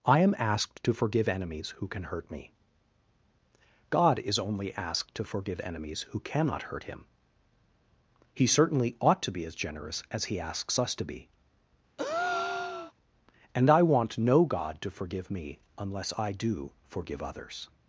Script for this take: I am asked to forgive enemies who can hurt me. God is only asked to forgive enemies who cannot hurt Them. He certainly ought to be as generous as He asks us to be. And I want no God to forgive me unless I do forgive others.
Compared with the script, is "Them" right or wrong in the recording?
wrong